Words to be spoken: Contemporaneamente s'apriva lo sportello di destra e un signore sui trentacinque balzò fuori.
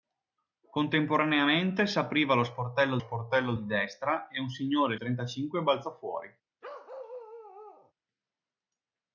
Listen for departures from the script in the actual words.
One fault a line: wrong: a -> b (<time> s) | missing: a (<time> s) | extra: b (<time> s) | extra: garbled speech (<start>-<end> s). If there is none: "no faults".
extra: sportello (3.0 s)
missing: sui (5.0 s)